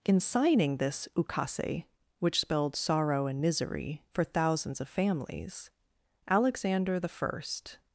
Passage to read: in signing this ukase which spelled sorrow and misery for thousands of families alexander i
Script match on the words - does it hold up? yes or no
yes